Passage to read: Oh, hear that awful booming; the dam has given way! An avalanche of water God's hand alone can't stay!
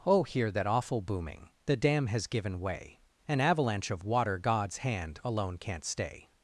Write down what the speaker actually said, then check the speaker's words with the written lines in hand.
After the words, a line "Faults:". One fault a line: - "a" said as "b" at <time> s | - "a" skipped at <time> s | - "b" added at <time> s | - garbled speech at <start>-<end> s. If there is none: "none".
Oh, hear that awful booming; the dam has given way! An avalanche of water God's hand alone can't stay!
Faults:
none